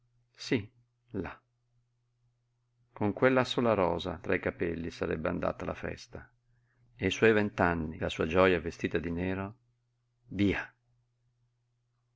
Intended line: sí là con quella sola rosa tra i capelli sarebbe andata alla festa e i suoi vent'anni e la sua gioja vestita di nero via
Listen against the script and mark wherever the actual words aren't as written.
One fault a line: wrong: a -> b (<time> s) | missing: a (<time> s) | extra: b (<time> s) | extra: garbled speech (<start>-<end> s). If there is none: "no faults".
missing: e (8.0 s)